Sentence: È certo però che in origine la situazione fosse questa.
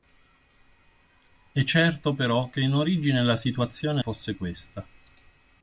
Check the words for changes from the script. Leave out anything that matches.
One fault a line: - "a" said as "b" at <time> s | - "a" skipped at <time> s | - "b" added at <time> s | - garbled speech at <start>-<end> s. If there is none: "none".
none